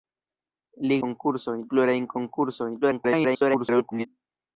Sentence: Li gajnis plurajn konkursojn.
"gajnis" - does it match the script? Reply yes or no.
no